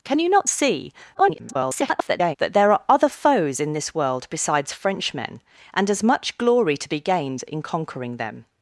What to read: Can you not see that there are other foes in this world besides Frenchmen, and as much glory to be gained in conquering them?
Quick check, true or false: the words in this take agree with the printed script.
false